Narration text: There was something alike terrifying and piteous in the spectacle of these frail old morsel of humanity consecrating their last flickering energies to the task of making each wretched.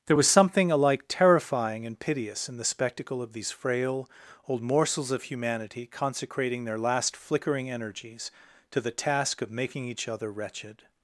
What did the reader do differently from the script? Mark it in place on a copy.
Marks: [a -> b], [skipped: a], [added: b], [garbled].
There was something alike terrifying and piteous in the spectacle of these frail old [morsel -> morsels] of humanity consecrating their last flickering energies to the task of making each [added: other] wretched.